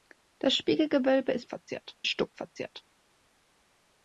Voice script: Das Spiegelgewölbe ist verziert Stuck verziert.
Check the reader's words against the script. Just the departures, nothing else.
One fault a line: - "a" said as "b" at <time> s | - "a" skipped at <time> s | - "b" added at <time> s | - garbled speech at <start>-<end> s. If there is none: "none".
none